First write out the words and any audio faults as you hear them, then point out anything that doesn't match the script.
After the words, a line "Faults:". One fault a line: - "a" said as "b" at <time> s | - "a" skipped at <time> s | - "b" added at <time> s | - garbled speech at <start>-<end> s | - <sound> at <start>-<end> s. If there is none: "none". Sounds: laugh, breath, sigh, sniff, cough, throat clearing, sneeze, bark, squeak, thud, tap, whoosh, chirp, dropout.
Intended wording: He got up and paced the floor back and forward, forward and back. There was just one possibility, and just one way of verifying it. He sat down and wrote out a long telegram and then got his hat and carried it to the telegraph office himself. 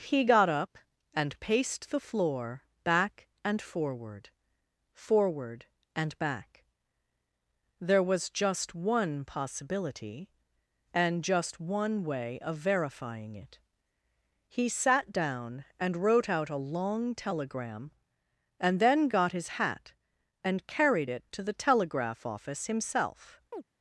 He got up and paced the floor back and forward, forward and back. There was just one possibility, and just one way of verifying it. He sat down and wrote out a long telegram and then got his hat and carried it to the telegraph office himself.
Faults:
- chirp at 23.5-23.6 s